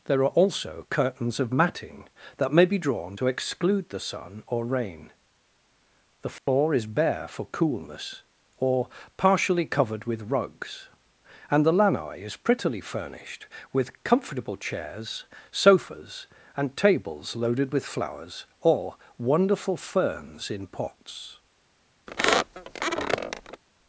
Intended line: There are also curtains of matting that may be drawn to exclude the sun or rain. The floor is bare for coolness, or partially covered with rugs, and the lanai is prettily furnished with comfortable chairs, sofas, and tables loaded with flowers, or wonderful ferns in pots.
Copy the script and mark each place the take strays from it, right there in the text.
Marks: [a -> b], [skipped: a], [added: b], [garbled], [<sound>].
There are also curtains of matting that may be drawn to exclude the sun or rain. The floor [dropout] is bare for coolness, or partially covered with rugs, and the lanai is prettily furnished with comfortable chairs, sofas, and tables loaded with flowers, or wonderful ferns in pots. [squeak]